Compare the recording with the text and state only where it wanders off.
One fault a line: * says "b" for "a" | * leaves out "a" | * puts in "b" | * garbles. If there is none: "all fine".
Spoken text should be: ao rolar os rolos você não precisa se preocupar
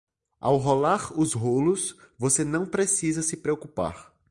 all fine